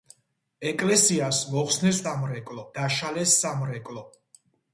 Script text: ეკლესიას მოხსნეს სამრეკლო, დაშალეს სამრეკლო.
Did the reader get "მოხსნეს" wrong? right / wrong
right